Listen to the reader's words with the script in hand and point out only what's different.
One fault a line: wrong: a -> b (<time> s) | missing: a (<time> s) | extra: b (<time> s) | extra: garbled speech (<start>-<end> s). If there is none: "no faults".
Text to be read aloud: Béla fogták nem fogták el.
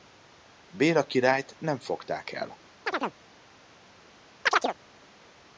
wrong: fogták -> királyt (1.1 s)